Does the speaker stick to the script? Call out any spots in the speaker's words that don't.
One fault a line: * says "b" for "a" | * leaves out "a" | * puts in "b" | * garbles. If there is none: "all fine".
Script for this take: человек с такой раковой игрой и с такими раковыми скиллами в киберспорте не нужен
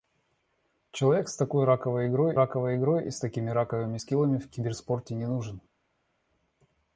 * puts in "раковой игрой"